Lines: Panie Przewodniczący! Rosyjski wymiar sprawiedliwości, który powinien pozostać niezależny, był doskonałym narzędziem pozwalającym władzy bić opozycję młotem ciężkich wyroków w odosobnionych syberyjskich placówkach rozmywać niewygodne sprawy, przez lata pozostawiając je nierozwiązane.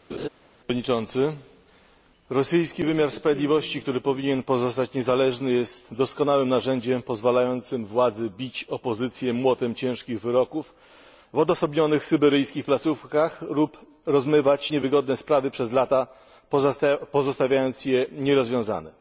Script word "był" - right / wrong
wrong